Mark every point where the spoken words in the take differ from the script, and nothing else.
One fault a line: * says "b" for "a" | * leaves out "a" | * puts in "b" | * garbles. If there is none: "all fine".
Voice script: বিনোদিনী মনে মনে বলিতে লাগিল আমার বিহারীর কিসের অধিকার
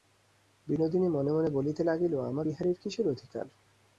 all fine